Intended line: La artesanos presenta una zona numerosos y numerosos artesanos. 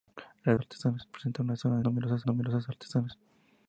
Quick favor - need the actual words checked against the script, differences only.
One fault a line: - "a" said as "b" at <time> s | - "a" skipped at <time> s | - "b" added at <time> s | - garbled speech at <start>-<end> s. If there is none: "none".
none